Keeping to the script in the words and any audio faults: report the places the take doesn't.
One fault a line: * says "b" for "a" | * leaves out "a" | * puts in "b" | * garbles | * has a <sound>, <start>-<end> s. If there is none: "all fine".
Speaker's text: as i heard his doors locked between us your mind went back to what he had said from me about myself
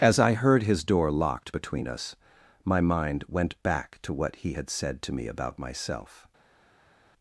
* says "door" for "doors"
* says "my" for "your"
* says "to" for "from"